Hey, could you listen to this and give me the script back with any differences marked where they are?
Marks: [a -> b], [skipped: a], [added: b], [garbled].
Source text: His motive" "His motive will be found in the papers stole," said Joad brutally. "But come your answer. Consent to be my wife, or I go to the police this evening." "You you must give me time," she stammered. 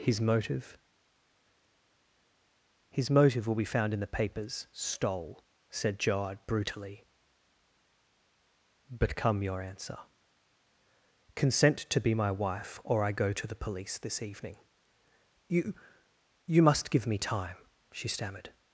His motive" "His motive will be found in the papers stole," said Joad brutally. "But come your answer. Consent to be my wife, or I go to the police this evening." "You you must give me time," she stammered.